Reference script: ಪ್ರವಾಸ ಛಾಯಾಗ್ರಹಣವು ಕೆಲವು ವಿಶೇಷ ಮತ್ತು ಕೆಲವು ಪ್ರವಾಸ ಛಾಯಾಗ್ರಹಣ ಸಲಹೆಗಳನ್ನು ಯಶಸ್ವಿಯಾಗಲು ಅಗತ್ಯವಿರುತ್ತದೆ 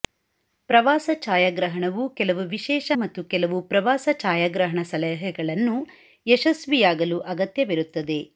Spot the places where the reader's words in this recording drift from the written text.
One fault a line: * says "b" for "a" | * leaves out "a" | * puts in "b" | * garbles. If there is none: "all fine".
all fine